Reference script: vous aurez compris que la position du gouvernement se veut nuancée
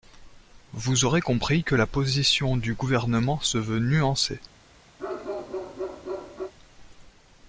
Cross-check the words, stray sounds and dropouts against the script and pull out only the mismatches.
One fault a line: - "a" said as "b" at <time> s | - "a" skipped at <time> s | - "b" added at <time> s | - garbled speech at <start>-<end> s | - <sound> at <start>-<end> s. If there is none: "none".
- bark at 5.0-6.5 s